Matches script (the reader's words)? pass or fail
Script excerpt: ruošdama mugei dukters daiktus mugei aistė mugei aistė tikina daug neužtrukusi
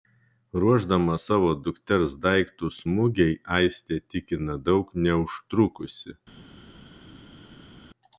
fail